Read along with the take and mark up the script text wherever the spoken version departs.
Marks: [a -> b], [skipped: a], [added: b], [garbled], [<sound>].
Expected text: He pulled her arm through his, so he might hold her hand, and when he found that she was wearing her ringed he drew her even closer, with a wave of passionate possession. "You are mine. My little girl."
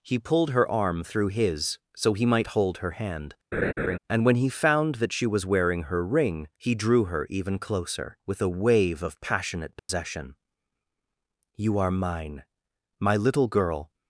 He pulled her arm through his, so he might hold her hand, [laugh] and when he found that she was wearing her [ringed -> ring] he drew her even closer, with a wave of passionate possession. [dropout] "You are mine. My little girl."